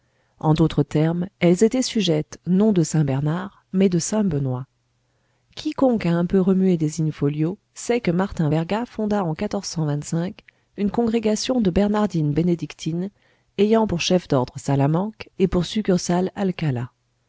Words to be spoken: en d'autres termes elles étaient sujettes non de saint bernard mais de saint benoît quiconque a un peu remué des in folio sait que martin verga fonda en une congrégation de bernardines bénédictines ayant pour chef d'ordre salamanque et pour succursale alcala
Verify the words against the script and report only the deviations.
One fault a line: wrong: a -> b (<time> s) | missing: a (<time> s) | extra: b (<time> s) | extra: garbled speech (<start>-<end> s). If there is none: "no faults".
no faults